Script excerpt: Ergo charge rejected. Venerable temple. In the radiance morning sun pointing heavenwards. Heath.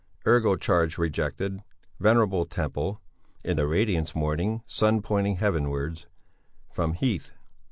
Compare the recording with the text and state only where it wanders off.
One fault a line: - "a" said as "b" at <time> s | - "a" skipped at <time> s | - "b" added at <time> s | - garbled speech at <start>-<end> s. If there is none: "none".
- "From" added at 6.7 s